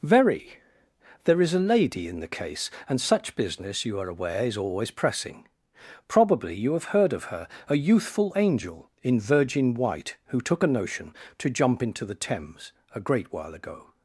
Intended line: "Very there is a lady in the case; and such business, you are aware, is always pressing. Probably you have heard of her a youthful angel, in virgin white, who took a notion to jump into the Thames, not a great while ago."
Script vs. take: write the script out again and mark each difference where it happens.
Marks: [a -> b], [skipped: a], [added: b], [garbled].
"Very there is a lady in the case; and such business, you are aware, is always pressing. Probably you have heard of her a youthful angel, in virgin white, who took a notion to jump into the Thames, [skipped: not] a great while ago."